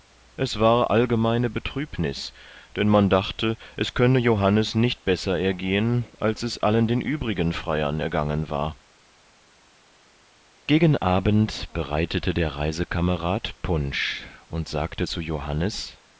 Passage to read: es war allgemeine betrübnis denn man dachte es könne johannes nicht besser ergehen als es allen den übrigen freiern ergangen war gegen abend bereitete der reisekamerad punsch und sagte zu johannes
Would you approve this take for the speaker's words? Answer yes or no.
yes